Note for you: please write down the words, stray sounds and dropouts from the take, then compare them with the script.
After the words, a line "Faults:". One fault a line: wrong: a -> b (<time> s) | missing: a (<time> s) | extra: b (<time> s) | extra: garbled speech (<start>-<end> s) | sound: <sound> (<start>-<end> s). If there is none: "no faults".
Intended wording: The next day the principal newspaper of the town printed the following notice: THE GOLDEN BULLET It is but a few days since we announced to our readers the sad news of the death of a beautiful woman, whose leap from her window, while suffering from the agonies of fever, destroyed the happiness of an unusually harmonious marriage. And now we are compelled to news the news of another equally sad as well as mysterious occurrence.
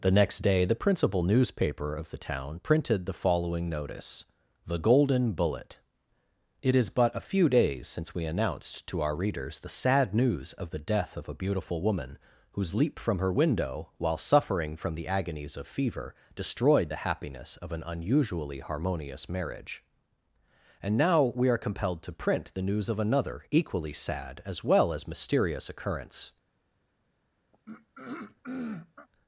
The next day the principal newspaper of the town printed the following notice: THE GOLDEN BULLET It is but a few days since we announced to our readers the sad news of the death of a beautiful woman, whose leap from her window, while suffering from the agonies of fever, destroyed the happiness of an unusually harmonious marriage. And now we are compelled to print the news of another equally sad as well as mysterious occurrence.
Faults:
wrong: news -> print (22.1 s)
sound: throat clearing (27.5-29.1 s)